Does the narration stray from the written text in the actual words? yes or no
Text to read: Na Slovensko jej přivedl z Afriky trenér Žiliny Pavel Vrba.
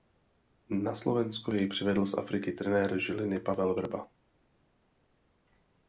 no